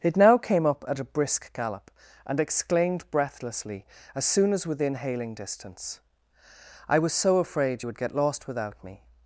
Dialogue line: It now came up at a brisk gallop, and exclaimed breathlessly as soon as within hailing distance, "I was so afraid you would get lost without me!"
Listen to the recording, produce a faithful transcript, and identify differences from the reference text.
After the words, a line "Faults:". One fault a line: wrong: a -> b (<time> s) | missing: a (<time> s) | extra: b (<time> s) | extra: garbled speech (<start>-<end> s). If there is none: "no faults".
It now came up at a brisk gallop, and exclaimed breathlessly as soon as within hailing distance, "I was so afraid you would get lost without me!"
Faults:
no faults